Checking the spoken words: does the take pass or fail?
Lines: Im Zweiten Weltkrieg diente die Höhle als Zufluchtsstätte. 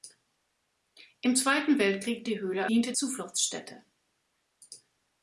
fail